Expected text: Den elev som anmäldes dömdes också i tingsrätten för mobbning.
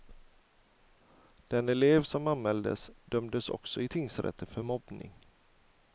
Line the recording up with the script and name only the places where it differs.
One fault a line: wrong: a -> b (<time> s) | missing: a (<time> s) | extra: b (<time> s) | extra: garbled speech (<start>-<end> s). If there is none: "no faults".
no faults